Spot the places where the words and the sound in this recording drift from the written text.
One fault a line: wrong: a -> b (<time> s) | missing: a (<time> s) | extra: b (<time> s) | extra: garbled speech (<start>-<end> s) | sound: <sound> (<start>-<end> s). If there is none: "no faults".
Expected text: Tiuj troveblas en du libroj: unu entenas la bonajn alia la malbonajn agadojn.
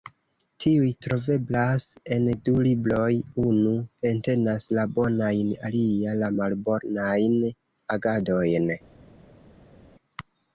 no faults